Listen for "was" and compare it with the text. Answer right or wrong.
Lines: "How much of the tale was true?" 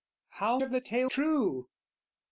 wrong